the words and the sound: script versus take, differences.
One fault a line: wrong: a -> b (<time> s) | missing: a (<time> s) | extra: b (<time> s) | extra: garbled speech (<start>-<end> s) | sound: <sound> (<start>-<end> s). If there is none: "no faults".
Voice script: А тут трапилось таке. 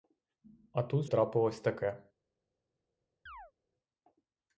sound: chirp (3.3-3.5 s)